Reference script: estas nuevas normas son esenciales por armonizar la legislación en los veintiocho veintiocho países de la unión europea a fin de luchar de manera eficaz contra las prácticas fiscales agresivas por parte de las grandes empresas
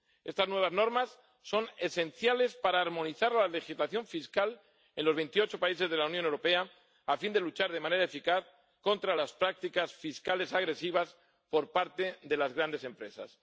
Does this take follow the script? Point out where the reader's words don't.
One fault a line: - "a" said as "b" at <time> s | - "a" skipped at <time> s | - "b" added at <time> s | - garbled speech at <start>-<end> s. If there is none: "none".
- "por" said as "para" at 2.5 s
- "fiscal" added at 4.0 s
- "veintiocho" skipped at 5.6 s